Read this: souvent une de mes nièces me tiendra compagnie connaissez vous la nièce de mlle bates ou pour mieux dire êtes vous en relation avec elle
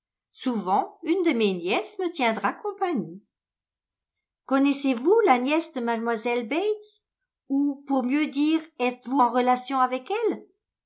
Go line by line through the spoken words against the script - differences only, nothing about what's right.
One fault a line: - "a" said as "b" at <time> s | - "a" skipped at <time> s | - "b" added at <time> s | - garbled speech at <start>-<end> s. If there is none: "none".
none